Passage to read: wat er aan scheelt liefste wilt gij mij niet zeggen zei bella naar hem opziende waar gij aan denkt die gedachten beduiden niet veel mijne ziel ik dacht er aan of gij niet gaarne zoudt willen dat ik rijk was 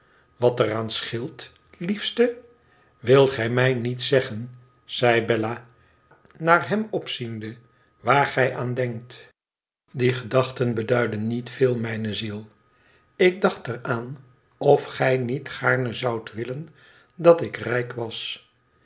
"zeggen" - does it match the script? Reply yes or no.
yes